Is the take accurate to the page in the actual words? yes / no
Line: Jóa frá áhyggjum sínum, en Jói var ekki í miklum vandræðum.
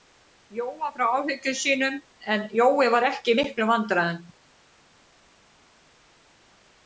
yes